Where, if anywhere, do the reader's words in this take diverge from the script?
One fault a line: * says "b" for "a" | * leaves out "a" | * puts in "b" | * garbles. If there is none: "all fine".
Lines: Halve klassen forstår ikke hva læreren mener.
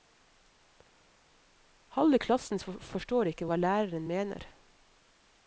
all fine